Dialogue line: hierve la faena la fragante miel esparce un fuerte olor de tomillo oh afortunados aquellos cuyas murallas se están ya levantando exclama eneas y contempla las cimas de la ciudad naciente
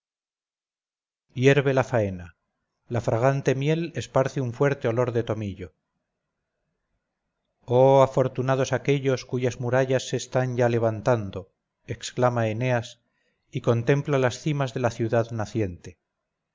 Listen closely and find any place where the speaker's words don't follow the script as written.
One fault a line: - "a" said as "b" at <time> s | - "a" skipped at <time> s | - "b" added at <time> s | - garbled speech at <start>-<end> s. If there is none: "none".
none